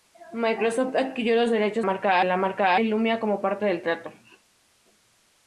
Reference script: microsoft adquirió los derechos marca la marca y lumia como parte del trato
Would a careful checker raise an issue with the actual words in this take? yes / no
no